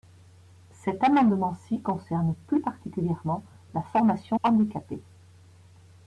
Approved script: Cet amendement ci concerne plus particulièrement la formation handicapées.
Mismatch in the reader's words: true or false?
false